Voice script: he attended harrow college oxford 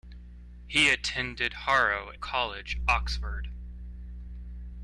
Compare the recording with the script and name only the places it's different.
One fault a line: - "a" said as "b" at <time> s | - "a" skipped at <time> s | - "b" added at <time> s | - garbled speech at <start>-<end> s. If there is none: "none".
none